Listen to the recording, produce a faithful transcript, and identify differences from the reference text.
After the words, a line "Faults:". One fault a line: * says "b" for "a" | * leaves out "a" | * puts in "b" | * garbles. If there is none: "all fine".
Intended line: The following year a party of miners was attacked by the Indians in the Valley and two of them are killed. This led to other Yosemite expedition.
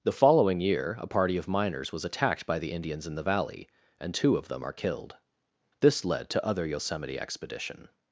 The following year a party of miners was attacked by the Indians in the Valley and two of them are killed. This led to other Yosemite expedition.
Faults:
all fine